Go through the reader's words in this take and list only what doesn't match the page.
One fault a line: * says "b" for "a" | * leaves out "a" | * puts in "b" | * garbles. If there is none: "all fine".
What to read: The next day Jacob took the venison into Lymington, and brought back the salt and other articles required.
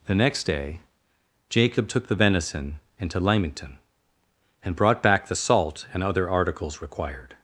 all fine